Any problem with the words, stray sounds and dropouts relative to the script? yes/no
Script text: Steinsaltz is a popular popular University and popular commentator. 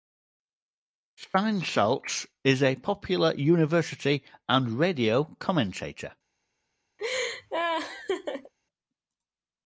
yes